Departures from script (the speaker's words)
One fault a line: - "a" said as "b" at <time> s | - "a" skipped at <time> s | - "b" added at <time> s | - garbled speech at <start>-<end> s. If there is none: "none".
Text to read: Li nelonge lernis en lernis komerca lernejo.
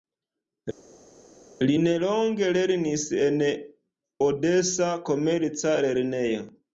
- "lernis" said as "odesa" at 4.3 s